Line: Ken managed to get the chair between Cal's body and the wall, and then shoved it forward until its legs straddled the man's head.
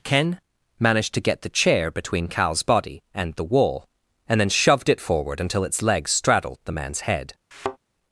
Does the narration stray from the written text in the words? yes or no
no